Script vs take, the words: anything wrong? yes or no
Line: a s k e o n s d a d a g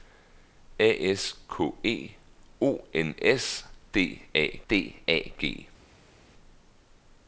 no